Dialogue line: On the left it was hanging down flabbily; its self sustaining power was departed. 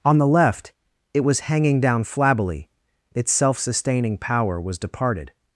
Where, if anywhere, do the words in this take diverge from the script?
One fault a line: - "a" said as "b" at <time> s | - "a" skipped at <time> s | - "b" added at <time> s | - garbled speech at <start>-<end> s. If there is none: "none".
none